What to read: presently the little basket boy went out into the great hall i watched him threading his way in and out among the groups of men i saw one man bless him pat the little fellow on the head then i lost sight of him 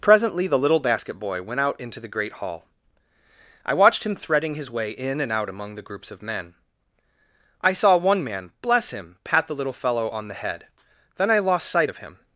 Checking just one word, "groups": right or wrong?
right